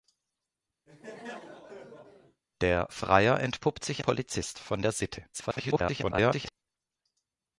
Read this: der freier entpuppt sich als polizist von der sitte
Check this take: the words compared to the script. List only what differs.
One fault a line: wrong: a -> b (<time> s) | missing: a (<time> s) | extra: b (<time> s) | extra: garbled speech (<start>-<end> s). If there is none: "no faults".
missing: als (4.0 s)
extra: garbled speech (5.3-6.5 s)